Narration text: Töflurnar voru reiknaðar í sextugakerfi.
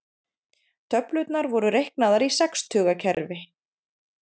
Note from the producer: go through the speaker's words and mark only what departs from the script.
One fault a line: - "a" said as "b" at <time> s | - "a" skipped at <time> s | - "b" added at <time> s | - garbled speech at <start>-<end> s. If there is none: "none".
none